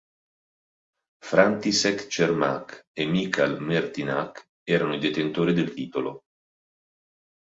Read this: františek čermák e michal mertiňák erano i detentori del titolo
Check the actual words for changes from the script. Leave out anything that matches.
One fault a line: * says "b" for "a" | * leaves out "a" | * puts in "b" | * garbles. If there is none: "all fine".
all fine